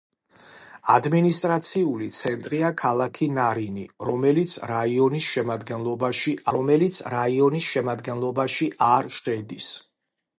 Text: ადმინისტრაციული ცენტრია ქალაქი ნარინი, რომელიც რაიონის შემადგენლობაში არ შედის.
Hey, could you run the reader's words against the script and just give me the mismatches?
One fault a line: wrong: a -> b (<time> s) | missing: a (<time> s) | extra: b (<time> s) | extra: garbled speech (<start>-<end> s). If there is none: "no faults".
extra: რომელიც რაიონის შემადგენლობაში (6.6 s)